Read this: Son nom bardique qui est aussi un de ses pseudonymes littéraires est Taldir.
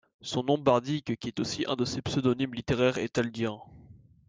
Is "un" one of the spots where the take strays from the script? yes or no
no